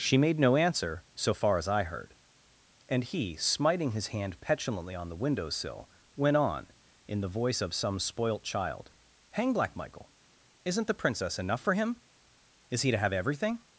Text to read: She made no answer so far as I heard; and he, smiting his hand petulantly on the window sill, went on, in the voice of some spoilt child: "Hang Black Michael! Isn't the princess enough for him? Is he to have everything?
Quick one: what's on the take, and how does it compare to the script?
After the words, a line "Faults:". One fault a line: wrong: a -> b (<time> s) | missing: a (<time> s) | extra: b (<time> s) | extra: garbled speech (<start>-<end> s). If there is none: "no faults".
She made no answer so far as I heard; and he, smiting his hand petulantly on the window sill, went on, in the voice of some spoilt child: "Hang Black Michael! Isn't the princess enough for him? Is he to have everything?
Faults:
no faults